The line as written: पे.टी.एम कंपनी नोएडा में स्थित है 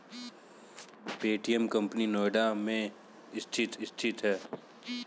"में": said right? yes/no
yes